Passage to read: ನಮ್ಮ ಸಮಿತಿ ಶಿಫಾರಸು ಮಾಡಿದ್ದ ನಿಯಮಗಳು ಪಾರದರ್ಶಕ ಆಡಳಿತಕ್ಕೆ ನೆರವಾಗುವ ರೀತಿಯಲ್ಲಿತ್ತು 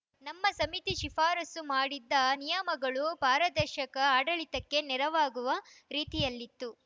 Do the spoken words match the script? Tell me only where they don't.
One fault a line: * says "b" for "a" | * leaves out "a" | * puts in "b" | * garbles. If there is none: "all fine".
all fine